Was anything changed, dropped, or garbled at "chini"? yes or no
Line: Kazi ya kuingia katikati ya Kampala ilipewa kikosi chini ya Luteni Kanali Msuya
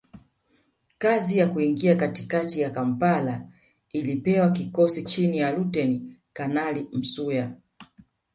no